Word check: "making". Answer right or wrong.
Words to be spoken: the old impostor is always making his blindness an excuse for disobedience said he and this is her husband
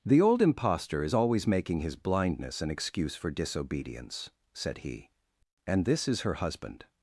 right